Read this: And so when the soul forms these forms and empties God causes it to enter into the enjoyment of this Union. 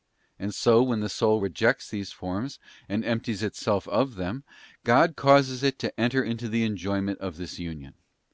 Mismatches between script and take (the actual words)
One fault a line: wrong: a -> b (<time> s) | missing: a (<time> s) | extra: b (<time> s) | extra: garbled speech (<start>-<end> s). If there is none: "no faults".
wrong: forms -> rejects (1.4 s)
extra: itself of them (3.4 s)